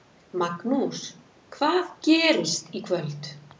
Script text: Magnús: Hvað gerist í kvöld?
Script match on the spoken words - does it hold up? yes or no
yes